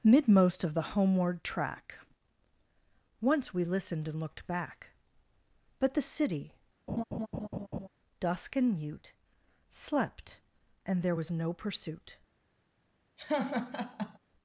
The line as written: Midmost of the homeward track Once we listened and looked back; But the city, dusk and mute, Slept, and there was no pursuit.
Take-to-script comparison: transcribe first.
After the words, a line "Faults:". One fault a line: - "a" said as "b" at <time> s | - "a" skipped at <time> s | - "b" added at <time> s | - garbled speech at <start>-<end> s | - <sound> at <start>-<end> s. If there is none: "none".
Midmost of the homeward track Once we listened and looked back; But the city, dusk and mute, Slept, and there was no pursuit.
Faults:
- laugh at 6.9-7.9 s
- laugh at 13.2-14.2 s